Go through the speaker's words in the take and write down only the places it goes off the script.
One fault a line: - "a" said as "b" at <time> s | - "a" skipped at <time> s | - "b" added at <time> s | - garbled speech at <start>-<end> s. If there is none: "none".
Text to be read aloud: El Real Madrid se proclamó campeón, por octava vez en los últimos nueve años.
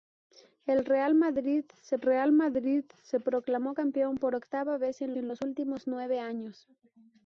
- "Real Madrid se" added at 2.0 s
- "en" added at 5.2 s